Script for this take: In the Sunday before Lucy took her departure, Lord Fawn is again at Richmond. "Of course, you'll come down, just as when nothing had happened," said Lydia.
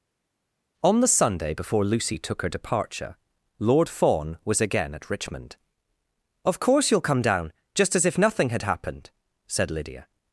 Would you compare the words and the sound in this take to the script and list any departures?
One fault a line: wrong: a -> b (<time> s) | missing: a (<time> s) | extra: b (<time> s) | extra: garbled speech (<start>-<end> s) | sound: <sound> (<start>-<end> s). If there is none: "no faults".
wrong: In -> On (0.8 s)
wrong: is -> was (4.4 s)
wrong: when -> if (8.0 s)